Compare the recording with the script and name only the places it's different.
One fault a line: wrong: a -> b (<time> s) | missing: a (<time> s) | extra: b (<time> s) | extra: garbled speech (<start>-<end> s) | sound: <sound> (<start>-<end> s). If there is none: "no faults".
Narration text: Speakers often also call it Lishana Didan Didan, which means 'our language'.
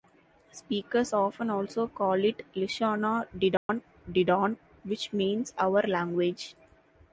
sound: dropout (3.6-3.7 s)